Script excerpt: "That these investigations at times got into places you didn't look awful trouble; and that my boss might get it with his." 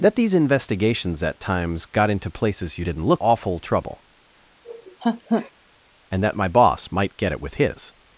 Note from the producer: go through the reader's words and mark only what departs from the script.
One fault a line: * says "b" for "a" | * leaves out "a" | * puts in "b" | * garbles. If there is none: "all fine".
all fine